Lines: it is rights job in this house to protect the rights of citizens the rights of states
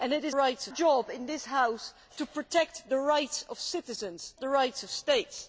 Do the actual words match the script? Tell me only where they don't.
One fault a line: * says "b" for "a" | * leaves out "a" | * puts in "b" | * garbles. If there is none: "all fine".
all fine